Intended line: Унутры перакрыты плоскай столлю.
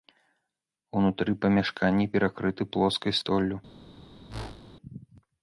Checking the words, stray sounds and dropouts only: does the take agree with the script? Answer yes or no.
no